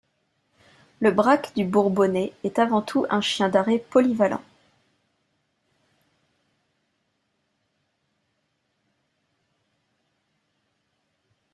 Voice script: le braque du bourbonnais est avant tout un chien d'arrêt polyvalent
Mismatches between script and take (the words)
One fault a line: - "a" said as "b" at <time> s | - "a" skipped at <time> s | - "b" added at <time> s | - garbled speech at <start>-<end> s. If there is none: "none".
none